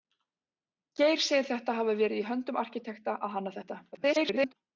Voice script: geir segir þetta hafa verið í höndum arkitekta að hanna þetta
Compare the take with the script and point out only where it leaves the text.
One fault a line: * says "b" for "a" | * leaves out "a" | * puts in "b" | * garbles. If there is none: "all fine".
* garbles